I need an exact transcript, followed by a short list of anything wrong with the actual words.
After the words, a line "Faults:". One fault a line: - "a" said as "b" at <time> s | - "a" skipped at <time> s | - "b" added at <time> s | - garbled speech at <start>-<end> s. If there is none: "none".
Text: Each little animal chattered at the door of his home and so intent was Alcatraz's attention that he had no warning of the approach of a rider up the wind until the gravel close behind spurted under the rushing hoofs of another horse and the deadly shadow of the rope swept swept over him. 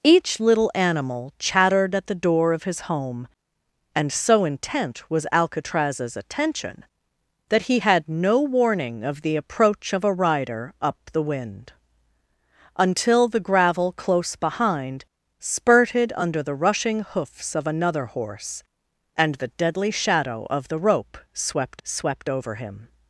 Each little animal chattered at the door of his home and so intent was Alcatraz's attention that he had no warning of the approach of a rider up the wind until the gravel close behind spurted under the rushing hoofs of another horse and the deadly shadow of the rope swept swept over him.
Faults:
none